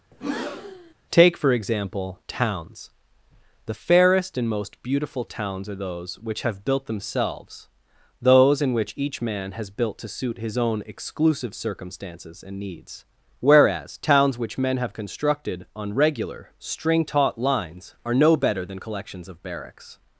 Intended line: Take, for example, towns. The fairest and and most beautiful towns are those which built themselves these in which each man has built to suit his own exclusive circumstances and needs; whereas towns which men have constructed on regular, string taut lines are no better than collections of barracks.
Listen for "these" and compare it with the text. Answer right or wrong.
wrong